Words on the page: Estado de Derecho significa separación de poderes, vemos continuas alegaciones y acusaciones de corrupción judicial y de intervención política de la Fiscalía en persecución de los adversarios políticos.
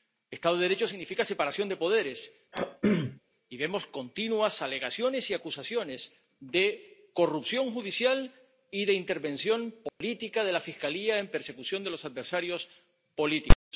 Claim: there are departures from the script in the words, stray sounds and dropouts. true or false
true